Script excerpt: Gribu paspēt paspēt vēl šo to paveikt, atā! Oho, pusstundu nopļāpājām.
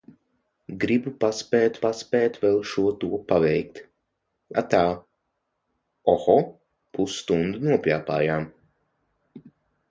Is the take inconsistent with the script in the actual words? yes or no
no